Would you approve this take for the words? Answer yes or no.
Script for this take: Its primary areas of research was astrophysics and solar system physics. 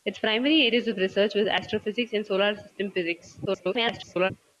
no